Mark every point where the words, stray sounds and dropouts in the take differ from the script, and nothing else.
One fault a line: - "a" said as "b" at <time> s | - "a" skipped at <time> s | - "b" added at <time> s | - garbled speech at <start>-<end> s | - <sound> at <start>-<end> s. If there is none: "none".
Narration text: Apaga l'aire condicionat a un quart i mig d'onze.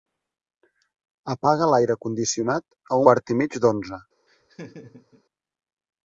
- "un" skipped at 3.0 s
- laugh at 4.3-5.2 s